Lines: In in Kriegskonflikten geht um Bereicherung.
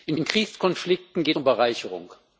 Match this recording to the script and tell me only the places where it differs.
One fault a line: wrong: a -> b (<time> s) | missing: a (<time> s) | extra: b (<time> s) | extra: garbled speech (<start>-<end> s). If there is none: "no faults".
no faults